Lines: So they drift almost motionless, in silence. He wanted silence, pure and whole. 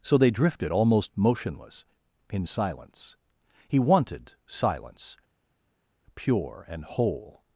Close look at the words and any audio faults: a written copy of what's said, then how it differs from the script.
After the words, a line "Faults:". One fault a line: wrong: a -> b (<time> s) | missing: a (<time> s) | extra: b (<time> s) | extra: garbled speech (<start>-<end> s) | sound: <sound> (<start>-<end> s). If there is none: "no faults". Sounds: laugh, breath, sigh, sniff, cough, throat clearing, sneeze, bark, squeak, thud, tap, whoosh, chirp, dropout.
So they drifted almost motionless, in silence. He wanted silence, pure and whole.
Faults:
wrong: drift -> drifted (0.3 s)